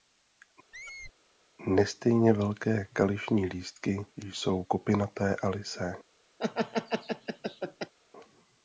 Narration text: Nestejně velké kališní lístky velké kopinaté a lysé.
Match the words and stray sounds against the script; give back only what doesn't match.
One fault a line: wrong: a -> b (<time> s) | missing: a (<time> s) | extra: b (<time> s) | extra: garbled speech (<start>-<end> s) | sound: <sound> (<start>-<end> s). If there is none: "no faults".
sound: squeak (0.7-1.1 s)
wrong: velké -> jsou (4.2 s)
sound: laugh (6.4-7.9 s)